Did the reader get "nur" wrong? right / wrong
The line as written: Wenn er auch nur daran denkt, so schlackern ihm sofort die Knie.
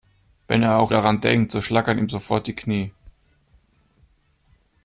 wrong